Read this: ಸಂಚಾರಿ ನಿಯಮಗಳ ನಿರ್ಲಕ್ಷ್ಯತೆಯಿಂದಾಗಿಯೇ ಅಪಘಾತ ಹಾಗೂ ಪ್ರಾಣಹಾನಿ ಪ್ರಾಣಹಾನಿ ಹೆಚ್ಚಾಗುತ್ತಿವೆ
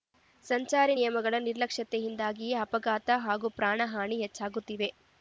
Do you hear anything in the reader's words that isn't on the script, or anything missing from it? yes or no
yes